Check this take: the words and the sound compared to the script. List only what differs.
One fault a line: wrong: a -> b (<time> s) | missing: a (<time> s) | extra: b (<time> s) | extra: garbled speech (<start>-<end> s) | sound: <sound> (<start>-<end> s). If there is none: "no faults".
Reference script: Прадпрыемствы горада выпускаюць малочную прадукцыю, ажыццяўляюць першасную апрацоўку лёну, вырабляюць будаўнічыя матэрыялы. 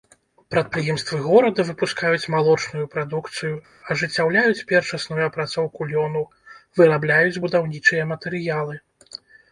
no faults